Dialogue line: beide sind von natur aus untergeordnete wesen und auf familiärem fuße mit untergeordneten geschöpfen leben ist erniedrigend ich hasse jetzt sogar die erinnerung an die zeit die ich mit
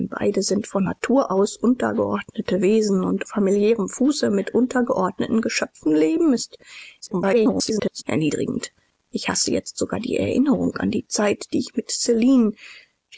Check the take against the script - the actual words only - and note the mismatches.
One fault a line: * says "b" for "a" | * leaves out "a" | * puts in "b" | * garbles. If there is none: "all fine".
* leaves out "auf"
* garbles